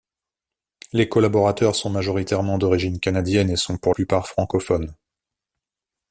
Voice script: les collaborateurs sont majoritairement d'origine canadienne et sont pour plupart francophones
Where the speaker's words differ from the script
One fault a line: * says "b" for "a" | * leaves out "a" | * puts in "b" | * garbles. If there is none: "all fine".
all fine